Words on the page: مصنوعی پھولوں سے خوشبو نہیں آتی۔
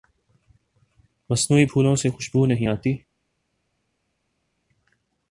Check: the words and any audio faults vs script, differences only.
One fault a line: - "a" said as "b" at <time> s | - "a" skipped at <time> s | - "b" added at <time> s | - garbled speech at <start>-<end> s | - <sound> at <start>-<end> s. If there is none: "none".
none